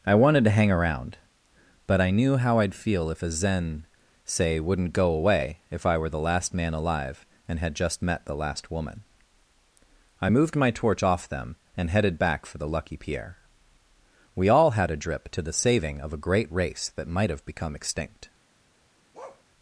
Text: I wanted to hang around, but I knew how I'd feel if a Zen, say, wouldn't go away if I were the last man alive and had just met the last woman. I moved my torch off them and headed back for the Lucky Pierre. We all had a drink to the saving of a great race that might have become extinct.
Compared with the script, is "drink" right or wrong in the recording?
wrong